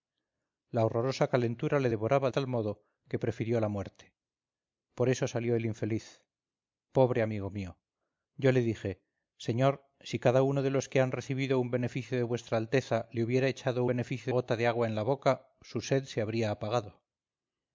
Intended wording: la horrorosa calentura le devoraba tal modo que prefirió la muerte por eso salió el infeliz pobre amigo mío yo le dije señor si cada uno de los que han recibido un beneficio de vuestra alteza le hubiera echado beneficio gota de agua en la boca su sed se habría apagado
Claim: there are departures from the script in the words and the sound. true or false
false